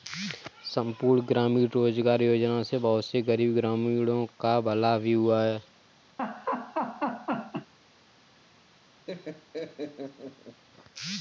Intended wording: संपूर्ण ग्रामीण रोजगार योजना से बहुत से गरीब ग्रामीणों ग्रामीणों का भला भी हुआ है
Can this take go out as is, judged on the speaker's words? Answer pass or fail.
fail